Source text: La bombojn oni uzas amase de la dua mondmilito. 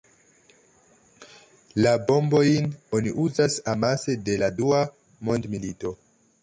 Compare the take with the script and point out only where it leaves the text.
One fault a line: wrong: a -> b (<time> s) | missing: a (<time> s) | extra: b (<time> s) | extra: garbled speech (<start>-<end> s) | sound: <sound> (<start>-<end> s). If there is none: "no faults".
no faults